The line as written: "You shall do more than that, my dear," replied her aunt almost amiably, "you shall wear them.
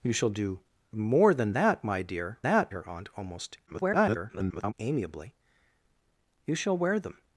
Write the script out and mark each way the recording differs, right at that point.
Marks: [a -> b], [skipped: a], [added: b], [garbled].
"You shall do more than that, my dear," [replied -> that] her aunt almost [garbled] amiably, "you shall wear them.